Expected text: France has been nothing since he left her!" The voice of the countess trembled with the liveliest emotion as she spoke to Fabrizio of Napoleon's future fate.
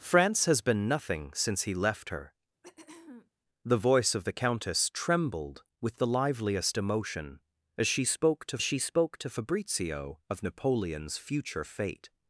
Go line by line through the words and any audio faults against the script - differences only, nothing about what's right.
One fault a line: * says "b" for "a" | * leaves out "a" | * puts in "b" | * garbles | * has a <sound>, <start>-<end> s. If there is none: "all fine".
* has a throat clearing, 2.6-3.3 s
* puts in "she spoke to"